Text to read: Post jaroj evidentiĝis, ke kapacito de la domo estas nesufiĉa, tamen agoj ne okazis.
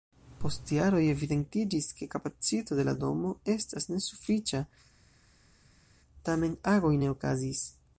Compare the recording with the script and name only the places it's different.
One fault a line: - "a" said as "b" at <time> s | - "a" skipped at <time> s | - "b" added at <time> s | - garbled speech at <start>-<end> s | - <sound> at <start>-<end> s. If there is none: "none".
none